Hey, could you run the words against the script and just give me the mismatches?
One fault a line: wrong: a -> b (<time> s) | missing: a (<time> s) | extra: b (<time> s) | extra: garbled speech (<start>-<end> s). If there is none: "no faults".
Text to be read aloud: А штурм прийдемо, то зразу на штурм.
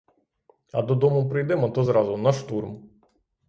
wrong: штурм -> додому (0.8 s)